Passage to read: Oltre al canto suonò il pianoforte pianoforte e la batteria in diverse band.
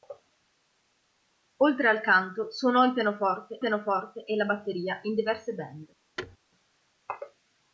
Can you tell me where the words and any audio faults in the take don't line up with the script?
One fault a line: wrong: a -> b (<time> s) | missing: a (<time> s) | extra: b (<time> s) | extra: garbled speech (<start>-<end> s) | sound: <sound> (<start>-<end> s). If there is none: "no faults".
sound: thud (6.2-6.4 s)